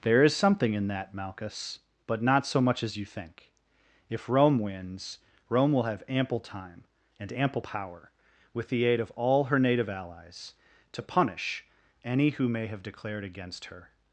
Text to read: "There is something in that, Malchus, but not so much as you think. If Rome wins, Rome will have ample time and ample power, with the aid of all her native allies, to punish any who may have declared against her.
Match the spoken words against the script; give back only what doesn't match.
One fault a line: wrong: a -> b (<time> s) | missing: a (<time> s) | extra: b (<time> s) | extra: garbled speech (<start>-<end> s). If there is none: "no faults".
no faults